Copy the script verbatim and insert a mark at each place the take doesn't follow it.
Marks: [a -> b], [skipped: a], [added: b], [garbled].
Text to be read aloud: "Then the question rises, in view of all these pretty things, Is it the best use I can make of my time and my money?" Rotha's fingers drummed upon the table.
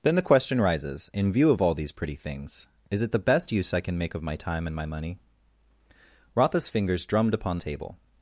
"Then the question rises, in view of all these pretty things, Is it the best use I can make of my time and my money?" Rotha's fingers drummed upon [skipped: the] table.